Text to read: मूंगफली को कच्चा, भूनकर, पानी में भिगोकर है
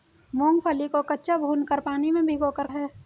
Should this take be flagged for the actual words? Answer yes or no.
no